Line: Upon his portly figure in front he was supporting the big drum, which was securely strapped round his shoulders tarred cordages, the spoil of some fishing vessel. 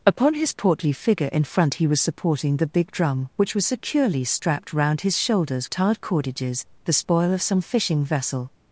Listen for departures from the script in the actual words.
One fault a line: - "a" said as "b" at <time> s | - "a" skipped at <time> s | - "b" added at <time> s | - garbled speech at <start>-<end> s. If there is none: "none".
none